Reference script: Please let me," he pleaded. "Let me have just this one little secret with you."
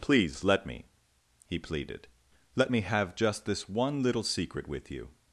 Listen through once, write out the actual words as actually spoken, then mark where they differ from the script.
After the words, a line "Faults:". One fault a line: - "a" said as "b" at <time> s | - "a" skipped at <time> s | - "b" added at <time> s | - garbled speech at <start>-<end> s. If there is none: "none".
Please let me," he pleaded. "Let me have just this one little secret with you."
Faults:
none